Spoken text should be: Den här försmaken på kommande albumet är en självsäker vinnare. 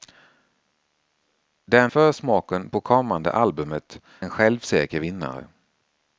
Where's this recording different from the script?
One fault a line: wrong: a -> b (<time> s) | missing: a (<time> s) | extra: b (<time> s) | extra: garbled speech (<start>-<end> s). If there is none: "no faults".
missing: här (1.9 s)
missing: är (4.0 s)